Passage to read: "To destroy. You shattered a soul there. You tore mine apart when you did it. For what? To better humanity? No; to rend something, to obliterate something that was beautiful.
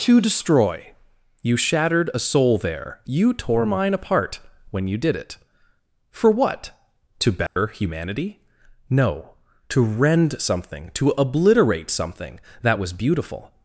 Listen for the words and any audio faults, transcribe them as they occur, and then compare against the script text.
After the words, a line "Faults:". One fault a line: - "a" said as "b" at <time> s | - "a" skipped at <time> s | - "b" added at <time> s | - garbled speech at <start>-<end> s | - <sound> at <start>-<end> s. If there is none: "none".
"To destroy. You shattered a soul there. You tore mine apart when you did it. For what? To better humanity? No; to rend something, to obliterate something that was beautiful.
Faults:
- dropout at 7.5-7.6 s